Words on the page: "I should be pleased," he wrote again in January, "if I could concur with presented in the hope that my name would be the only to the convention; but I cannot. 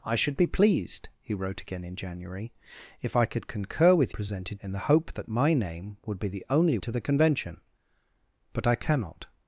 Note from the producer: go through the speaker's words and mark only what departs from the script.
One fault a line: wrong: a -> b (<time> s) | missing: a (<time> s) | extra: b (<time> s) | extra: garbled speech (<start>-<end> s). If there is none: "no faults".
no faults